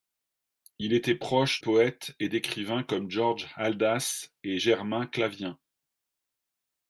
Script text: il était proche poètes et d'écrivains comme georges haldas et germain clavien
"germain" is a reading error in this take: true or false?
false